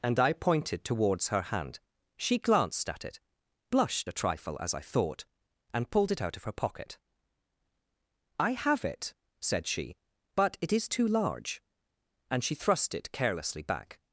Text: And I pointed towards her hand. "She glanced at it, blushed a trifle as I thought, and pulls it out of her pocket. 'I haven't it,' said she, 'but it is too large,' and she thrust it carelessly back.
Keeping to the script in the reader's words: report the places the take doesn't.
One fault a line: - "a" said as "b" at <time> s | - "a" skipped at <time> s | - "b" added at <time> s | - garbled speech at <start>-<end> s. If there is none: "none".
- "pulls" said as "pulled" at 5.9 s
- "haven't" said as "have" at 8.5 s